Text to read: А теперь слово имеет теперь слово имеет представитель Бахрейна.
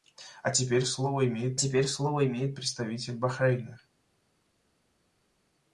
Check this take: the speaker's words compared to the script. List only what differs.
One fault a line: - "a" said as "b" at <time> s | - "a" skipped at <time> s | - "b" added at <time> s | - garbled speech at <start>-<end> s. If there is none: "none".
none